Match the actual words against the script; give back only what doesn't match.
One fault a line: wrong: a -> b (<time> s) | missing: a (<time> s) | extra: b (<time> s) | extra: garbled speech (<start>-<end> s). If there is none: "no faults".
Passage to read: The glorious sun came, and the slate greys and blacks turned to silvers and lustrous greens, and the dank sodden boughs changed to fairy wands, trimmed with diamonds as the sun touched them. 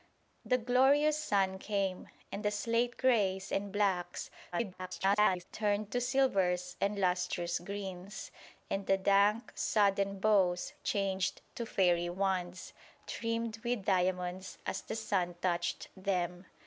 extra: garbled speech (4.5-5.4 s)